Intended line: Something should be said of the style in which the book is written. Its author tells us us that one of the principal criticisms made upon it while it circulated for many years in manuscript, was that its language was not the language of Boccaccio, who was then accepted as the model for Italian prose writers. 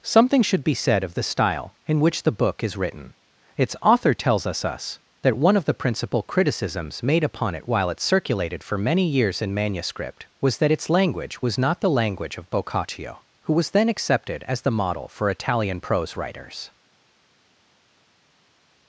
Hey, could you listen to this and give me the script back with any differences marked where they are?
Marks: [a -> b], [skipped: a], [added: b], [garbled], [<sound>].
Something should be said of the style in which the book is written. Its author tells us us that one of the principal criticisms made upon it while it circulated for many years in manuscript, was that its language was not the language of Boccaccio, who was then accepted as the model for Italian prose writers.